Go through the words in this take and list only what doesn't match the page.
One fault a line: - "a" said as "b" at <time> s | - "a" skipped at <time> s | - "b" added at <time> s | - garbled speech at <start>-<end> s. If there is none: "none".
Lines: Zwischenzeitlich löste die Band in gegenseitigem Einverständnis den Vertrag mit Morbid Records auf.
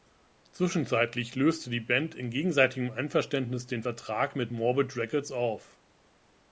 none